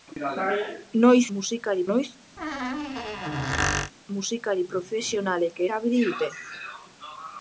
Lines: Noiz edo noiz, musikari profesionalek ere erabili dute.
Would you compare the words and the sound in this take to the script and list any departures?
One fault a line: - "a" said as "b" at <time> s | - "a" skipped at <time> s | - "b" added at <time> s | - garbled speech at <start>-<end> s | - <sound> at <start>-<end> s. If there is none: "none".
- "edo" said as "musikari" at 1.4 s
- squeak at 2.4-3.9 s
- "ere" skipped at 5.6 s